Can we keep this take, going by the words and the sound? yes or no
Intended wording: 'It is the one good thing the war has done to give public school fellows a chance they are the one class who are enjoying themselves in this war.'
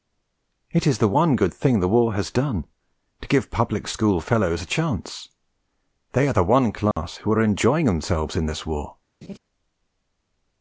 no